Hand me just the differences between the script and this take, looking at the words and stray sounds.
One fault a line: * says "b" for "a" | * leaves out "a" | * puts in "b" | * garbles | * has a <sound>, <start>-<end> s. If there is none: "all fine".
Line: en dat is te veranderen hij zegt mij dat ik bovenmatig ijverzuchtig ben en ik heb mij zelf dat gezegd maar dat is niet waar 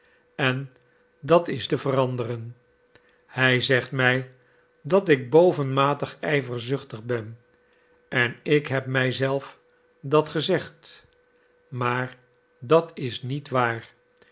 all fine